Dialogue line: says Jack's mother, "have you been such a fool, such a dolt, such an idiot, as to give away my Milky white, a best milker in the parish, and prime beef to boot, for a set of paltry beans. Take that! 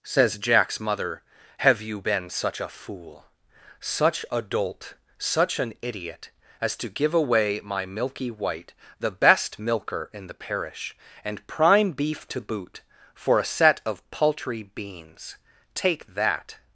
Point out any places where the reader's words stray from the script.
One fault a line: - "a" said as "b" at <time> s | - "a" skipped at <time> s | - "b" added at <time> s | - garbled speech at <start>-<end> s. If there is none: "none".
- "a" said as "the" at 9.0 s